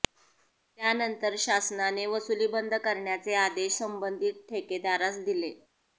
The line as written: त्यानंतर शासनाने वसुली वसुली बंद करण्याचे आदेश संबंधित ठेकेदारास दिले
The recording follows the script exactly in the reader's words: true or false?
false